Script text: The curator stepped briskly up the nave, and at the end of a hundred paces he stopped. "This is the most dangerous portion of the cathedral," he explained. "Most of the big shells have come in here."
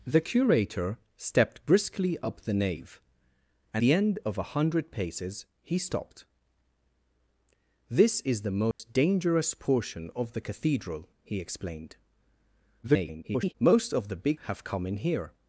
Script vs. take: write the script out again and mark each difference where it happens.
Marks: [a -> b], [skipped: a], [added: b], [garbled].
The curator stepped briskly up the nave, and [skipped: at] the end of a hundred paces he stopped. "This is the most dangerous portion of the cathedral," he explained. [garbled] "Most of the big [skipped: shells] have come in here."